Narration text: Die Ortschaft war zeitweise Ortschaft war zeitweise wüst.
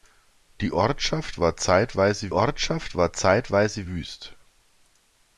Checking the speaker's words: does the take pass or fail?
pass